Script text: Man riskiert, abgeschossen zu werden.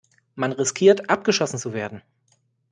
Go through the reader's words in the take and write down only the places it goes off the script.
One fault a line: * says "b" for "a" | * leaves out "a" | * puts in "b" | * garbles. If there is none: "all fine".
all fine